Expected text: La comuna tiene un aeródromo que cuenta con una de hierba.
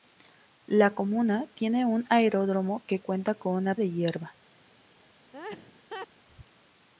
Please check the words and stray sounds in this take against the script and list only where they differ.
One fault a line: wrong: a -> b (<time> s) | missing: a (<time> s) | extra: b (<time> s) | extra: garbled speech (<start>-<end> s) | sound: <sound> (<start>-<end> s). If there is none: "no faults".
sound: laugh (5.3-6.1 s)